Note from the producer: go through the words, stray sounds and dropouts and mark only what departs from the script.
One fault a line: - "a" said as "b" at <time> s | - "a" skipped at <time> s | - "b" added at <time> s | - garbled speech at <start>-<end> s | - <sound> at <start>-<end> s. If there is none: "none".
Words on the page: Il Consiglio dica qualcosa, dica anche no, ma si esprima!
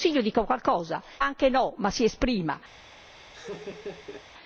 - "dica" skipped at 1.0 s
- laugh at 3.1-4.3 s